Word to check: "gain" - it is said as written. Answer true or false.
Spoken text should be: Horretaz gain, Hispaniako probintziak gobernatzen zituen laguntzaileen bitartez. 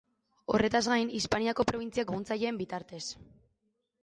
true